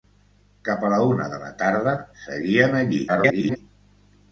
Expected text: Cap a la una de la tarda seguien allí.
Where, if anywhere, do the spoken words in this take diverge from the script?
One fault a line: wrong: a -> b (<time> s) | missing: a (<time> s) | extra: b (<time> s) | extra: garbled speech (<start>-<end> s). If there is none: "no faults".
extra: garbled speech (3.1-3.6 s)